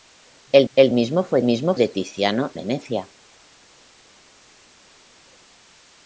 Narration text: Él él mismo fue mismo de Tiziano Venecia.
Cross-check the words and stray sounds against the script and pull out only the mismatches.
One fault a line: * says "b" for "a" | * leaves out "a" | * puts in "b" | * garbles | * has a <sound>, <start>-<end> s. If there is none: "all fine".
all fine